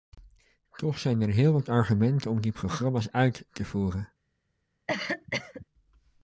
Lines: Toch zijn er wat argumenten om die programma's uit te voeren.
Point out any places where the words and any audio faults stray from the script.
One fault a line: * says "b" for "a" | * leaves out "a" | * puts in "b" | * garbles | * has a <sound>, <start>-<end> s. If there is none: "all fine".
* puts in "heel"
* has a cough, 4.9-5.7 s